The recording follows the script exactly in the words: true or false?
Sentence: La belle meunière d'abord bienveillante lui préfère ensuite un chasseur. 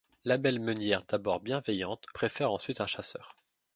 false